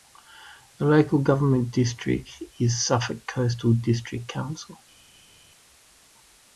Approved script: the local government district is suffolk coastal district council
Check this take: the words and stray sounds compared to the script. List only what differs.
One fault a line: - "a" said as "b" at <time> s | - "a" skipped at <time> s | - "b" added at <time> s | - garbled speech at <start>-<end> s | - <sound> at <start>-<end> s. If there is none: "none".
none